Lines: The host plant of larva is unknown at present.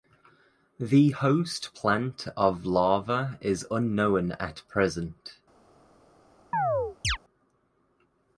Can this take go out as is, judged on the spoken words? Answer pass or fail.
pass